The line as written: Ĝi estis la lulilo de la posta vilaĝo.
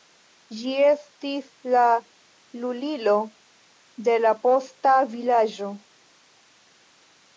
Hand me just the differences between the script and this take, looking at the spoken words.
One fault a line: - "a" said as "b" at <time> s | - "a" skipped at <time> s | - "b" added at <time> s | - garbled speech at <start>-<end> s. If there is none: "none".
none